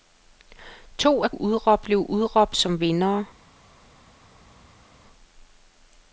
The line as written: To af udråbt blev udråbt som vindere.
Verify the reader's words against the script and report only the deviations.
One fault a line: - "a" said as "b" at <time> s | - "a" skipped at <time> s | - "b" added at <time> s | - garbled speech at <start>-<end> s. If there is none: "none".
none